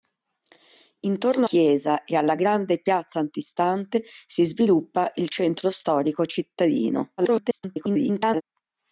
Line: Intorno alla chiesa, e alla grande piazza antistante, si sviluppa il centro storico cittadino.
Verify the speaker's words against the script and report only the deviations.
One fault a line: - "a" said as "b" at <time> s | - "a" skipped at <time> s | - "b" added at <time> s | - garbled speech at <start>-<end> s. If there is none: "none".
- "alla" skipped at 1.5 s
- garbled speech at 7.2-8.4 s